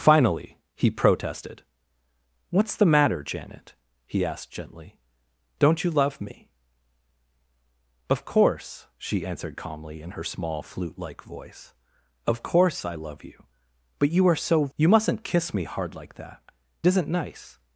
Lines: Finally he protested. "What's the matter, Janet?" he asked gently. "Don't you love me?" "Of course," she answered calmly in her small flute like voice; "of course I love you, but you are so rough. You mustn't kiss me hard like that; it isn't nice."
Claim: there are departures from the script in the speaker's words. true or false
true